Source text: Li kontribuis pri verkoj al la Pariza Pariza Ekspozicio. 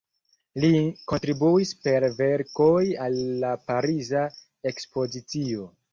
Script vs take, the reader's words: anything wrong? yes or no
yes